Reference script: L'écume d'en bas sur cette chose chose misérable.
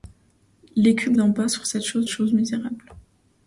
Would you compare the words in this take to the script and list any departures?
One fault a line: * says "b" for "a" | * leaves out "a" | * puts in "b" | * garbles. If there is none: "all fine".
all fine